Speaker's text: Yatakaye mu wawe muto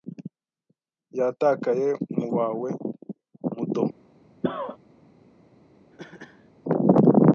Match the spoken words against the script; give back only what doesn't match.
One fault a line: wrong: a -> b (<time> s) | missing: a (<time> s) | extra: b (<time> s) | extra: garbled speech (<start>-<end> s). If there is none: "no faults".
no faults